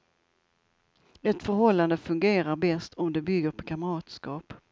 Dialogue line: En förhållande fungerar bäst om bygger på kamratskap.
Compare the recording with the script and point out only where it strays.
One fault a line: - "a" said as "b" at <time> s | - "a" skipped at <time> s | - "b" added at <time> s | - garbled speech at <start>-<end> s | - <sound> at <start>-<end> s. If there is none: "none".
- "En" said as "Ett" at 1.2 s
- "det" added at 3.1 s